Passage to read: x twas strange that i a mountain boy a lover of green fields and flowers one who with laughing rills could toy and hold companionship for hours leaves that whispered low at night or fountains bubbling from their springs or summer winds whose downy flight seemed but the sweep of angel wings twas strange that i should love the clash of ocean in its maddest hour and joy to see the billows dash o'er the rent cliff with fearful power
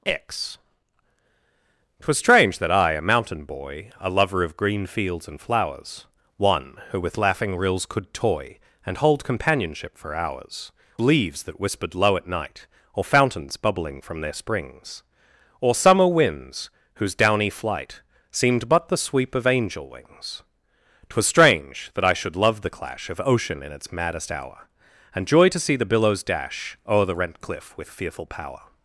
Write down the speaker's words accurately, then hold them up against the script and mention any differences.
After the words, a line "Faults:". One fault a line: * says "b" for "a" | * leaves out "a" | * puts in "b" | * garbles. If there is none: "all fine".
x twas strange that i a mountain boy a lover of green fields and flowers one who with laughing rills could toy and hold companionship for hours leaves that whispered low at night or fountains bubbling from their springs or summer winds whose downy flight seemed but the sweep of angel wings twas strange that i should love the clash of ocean in its maddest hour and joy to see the billows dash o'er the rent cliff with fearful power
Faults:
all fine